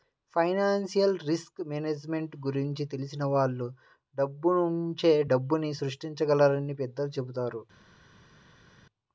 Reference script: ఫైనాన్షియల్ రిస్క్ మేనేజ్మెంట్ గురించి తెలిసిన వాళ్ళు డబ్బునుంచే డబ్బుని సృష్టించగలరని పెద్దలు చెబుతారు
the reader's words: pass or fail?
pass